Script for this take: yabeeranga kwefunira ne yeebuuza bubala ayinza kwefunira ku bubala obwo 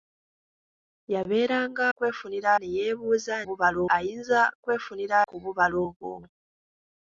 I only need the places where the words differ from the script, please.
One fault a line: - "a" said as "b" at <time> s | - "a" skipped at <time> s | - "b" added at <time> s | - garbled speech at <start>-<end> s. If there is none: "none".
none